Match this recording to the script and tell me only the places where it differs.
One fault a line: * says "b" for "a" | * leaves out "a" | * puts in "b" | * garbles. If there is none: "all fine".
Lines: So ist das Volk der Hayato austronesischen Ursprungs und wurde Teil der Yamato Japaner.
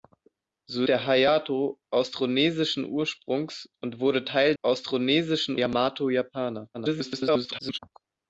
* leaves out "ist das Volk"
* says "austronesischen" for "der"
* garbles